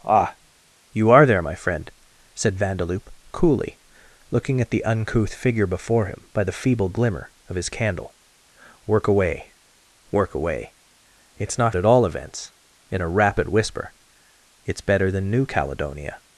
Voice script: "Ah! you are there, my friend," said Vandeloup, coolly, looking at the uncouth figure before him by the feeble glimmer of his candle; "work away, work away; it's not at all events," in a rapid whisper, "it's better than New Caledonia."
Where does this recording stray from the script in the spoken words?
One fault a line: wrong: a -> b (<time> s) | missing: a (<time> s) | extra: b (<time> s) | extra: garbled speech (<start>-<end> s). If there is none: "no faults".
no faults